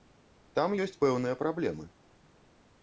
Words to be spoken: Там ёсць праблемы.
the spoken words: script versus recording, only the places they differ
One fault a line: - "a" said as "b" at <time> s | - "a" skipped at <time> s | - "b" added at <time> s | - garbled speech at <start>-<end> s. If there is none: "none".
- "пэўныя" added at 1.1 s